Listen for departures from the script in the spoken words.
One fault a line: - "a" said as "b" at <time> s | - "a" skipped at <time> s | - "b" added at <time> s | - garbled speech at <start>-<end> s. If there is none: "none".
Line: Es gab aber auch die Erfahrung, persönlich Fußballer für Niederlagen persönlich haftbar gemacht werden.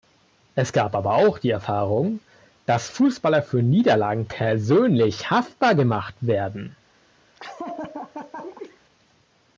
- "persönlich" said as "dass" at 2.6 s